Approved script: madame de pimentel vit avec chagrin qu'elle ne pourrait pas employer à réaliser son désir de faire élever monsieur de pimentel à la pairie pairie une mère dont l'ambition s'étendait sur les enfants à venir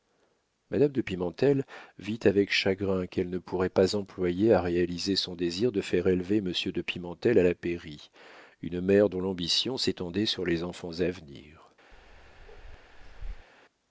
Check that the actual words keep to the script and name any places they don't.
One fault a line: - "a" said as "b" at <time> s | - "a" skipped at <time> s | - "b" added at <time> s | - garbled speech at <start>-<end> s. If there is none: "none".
- "pairie" skipped at 8.1 s